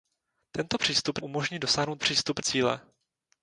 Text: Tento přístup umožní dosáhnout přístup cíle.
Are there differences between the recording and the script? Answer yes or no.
no